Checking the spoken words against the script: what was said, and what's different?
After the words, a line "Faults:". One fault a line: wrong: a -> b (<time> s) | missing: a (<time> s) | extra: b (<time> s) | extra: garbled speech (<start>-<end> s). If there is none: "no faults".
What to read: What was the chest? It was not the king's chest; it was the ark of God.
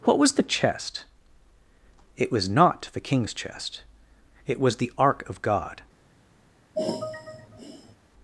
What was the chest? It was not the king's chest; it was the ark of God.
Faults:
no faults